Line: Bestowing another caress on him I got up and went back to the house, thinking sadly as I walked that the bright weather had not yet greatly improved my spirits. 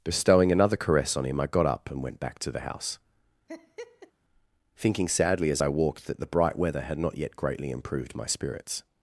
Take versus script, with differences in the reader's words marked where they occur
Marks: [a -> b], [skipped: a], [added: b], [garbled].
Bestowing another caress on him I got up and went back to the house, thinking sadly as I walked that the bright weather had not yet greatly improved my spirits.